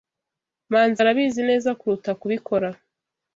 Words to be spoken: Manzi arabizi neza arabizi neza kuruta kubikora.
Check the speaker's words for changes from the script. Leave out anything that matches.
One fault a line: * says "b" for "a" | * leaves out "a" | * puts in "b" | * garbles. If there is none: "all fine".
* leaves out "arabizi neza"